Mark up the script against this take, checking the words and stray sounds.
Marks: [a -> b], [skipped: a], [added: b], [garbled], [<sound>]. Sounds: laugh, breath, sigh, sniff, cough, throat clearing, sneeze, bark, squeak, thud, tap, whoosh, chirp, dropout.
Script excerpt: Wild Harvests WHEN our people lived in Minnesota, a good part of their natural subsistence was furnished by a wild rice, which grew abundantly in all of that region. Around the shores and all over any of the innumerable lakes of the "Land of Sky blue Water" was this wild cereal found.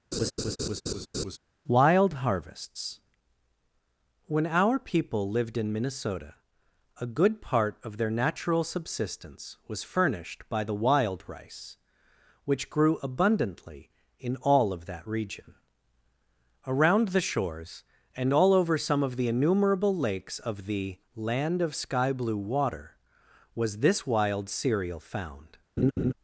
[laugh] Wild Harvests WHEN our people lived in Minnesota, a good part of their natural subsistence was furnished by [a -> the] wild rice, which grew abundantly in all of that region. Around the shores and all over [any -> some] of the innumerable lakes of the "Land of Sky blue Water" was this wild cereal found. [laugh]